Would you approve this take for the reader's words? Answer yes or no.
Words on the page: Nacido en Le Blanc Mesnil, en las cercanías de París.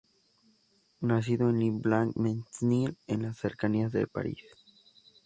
yes